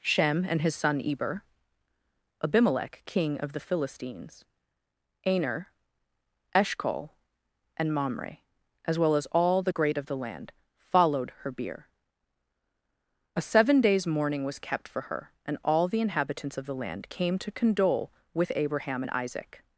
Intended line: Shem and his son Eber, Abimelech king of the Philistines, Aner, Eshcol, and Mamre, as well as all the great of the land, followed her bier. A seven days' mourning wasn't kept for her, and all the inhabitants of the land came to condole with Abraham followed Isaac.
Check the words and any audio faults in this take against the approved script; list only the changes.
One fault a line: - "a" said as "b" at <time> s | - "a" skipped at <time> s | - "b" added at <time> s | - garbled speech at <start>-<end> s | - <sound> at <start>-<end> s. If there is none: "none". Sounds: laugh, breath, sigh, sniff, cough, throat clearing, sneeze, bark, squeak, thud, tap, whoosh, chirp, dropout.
- "wasn't" said as "was" at 14.4 s
- "followed" said as "and" at 19.0 s